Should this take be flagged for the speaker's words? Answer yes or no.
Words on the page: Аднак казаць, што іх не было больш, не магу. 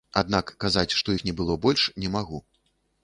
no